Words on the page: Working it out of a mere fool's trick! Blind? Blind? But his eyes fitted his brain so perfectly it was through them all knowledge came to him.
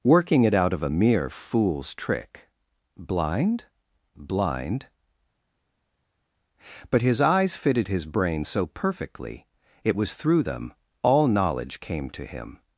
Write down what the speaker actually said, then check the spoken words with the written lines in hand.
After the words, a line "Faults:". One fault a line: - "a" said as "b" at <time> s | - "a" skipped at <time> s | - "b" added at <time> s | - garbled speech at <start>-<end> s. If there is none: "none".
Working it out of a mere fool's trick! Blind? Blind? But his eyes fitted his brain so perfectly it was through them all knowledge came to him.
Faults:
none